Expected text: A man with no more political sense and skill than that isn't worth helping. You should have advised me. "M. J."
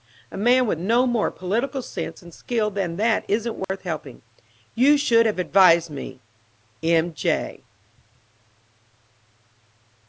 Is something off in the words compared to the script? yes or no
no